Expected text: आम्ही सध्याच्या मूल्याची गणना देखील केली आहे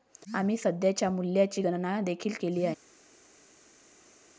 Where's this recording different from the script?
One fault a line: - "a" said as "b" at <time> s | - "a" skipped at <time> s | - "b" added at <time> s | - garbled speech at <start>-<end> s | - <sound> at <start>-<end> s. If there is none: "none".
none